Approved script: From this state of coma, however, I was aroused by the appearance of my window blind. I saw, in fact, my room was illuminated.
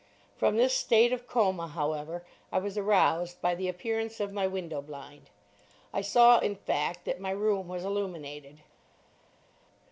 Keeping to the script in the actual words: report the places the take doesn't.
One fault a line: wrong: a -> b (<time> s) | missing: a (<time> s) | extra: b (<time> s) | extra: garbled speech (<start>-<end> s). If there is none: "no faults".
extra: that (7.0 s)